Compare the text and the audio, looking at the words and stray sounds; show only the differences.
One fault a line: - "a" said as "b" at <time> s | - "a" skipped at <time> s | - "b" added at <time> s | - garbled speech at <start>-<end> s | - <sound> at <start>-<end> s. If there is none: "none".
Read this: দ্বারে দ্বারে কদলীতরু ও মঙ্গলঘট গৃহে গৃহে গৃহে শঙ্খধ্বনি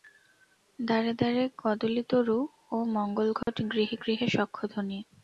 - dropout at 3.4-3.5 s
- "গৃহে" skipped at 4.3 s